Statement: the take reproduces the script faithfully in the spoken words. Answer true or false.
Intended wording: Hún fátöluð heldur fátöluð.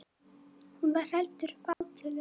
false